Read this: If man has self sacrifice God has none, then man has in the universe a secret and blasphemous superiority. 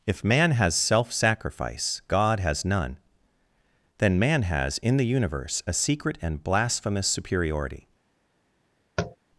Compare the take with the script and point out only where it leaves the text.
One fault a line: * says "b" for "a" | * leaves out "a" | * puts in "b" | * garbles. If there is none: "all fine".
all fine